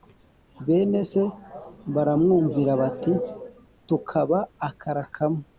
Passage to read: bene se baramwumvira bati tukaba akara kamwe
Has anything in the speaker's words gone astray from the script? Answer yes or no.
no